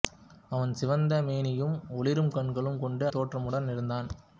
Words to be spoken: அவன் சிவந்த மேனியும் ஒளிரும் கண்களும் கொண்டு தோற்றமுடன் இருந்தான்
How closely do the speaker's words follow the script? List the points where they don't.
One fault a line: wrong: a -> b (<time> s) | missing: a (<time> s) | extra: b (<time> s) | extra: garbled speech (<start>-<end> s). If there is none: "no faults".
no faults